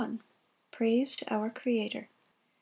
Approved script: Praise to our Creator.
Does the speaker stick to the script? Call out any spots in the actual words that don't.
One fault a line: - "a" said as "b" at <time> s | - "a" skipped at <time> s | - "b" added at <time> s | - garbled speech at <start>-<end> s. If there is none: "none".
none